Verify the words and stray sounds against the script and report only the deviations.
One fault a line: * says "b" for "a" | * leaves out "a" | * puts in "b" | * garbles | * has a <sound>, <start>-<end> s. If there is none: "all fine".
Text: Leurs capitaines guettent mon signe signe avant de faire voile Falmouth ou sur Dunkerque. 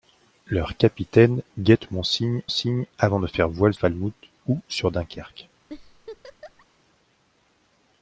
* has a laugh, 5.7-6.7 s